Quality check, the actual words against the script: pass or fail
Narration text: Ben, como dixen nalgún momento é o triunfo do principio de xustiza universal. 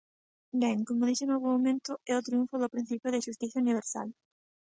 pass